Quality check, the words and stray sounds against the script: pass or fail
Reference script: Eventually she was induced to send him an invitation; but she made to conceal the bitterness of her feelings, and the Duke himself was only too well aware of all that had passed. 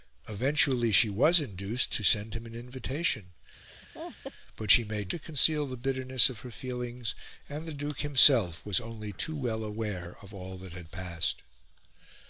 fail